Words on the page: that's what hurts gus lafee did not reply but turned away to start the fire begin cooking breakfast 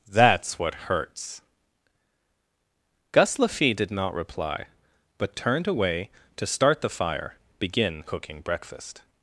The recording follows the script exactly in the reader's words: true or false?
true